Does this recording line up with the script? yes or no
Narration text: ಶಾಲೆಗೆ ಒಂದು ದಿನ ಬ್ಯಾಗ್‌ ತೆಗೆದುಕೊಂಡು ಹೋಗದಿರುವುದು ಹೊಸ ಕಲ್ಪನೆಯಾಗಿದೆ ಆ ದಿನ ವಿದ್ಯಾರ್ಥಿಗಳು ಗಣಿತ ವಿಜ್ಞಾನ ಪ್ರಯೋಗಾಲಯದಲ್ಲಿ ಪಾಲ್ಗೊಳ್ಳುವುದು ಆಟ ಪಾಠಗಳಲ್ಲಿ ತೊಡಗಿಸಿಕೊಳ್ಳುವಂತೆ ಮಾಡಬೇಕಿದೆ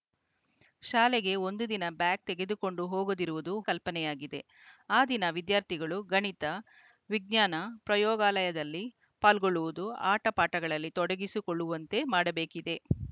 no